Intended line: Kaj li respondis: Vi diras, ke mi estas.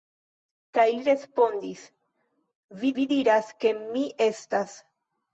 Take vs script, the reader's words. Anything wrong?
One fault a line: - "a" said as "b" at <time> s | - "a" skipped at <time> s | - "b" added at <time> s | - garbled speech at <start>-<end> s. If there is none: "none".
- "Vi" added at 3.0 s